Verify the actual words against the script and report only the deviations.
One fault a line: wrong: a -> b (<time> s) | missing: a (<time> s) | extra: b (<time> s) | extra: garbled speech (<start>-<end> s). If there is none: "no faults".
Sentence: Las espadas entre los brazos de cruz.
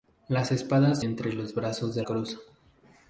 no faults